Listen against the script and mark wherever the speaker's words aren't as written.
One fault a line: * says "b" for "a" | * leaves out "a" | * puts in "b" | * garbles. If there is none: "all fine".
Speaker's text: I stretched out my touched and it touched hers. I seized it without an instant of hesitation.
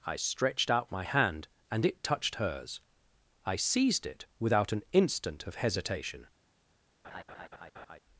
* says "hand" for "touched"